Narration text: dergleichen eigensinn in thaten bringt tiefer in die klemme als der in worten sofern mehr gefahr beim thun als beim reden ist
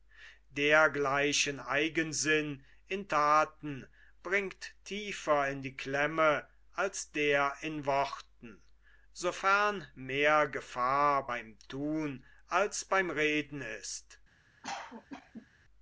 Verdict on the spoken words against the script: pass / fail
pass